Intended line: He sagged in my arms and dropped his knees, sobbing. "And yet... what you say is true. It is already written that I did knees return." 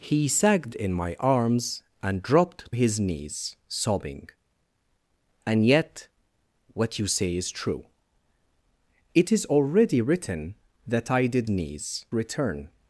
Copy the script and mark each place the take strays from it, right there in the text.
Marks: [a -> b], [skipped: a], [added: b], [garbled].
He sagged in my arms and dropped his knees, sobbing. "And yet... what you say is true. It is already written that I did knees return."